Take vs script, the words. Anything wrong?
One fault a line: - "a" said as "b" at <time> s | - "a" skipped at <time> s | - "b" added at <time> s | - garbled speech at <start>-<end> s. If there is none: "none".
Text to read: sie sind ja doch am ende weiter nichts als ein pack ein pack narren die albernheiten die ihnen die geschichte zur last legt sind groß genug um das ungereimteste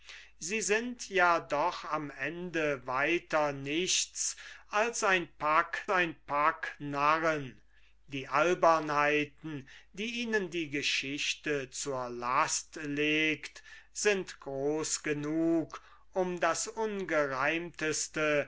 none